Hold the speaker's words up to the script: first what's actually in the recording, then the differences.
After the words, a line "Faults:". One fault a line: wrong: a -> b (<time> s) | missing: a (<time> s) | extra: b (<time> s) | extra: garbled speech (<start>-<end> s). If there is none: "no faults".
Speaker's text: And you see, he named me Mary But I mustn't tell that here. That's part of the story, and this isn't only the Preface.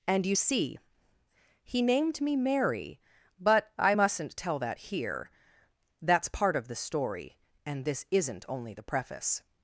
And you see, he named me Mary But I mustn't tell that here. That's part of the story, and this isn't only the Preface.
Faults:
no faults